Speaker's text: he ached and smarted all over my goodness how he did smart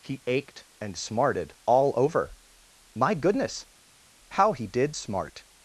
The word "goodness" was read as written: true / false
true